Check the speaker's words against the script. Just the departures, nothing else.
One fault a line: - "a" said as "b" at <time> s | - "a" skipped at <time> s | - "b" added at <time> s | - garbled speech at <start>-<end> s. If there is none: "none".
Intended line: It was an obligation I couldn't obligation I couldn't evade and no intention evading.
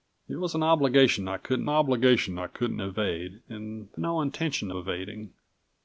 none